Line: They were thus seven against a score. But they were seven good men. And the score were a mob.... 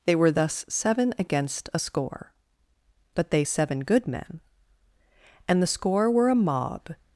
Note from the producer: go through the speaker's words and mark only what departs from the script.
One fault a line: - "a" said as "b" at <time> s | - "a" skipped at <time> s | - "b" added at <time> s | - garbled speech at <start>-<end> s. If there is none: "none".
- "were" skipped at 3.4 s